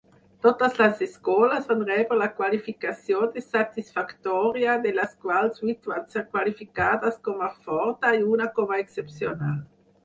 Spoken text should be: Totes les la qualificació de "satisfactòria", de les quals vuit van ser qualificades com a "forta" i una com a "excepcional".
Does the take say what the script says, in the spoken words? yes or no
no